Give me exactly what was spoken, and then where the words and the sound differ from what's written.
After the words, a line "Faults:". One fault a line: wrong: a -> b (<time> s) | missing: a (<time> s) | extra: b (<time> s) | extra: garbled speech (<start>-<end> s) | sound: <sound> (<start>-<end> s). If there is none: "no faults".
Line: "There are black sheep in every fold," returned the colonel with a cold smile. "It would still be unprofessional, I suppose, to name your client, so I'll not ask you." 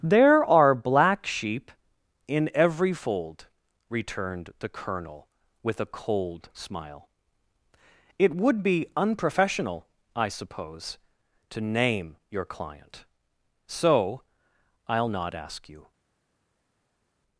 "There are black sheep in every fold," returned the colonel with a cold smile. "It would be unprofessional, I suppose, to name your client, so I'll not ask you."
Faults:
missing: still (8.6 s)